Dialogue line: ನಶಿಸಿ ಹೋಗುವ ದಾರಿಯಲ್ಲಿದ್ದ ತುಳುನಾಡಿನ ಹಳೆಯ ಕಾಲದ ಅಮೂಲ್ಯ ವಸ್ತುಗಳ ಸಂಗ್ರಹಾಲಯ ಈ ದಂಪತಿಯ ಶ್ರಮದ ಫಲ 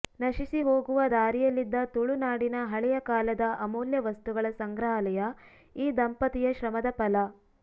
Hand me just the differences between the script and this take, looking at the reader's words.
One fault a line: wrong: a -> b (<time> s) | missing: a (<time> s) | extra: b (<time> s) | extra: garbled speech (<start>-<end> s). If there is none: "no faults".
no faults